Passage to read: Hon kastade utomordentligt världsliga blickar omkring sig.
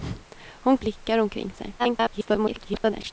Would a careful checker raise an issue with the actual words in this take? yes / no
yes